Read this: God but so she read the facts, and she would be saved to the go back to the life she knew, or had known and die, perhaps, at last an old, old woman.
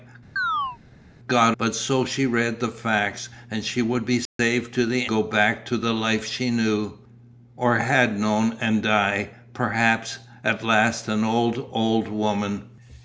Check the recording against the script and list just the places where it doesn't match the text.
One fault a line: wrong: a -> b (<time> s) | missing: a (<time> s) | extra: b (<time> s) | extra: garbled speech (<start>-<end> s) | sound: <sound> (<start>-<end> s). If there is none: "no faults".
sound: chirp (0.4-0.8 s)
sound: dropout (4.3-4.4 s)